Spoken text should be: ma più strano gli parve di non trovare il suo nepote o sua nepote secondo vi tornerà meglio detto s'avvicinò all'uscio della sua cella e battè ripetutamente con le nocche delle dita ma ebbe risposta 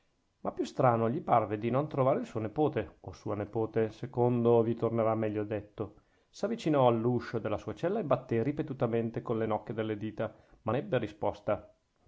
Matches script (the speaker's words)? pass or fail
pass